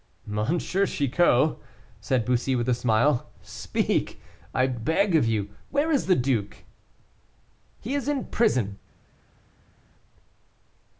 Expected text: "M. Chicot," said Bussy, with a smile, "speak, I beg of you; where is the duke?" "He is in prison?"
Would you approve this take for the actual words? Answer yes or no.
yes